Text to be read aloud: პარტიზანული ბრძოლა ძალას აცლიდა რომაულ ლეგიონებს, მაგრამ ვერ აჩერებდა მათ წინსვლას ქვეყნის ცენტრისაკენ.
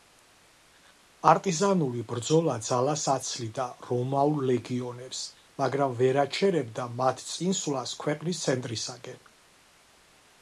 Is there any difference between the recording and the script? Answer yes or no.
no